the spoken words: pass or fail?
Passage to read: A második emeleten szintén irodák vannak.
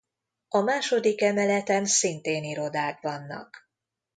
pass